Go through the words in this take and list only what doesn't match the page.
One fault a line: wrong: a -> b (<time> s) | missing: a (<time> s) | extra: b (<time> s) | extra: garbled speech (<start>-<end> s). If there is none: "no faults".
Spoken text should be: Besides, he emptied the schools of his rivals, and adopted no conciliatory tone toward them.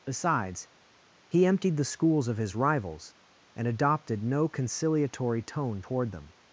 no faults